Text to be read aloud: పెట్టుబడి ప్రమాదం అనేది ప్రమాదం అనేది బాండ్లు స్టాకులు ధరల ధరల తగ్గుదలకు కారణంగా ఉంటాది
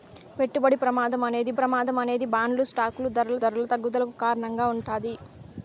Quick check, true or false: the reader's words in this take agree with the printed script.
true